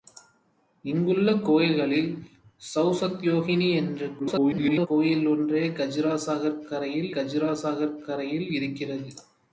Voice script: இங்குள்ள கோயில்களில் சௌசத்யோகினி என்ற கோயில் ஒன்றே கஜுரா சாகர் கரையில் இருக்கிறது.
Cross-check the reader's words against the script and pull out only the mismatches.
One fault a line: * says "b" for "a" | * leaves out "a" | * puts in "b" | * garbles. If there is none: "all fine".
* garbles
* puts in "கஜுரா சாகர் கரையில்"